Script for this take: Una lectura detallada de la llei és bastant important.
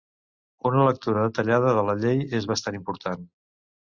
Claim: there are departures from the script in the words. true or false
false